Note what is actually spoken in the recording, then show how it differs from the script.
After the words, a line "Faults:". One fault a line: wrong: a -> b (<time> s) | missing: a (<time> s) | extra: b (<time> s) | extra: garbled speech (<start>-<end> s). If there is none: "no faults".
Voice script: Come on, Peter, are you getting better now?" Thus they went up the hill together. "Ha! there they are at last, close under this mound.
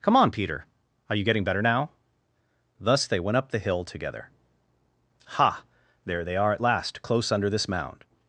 Come on, Peter, are you getting better now?" Thus they went up the hill together. "Ha! there they are at last, close under this mound.
Faults:
no faults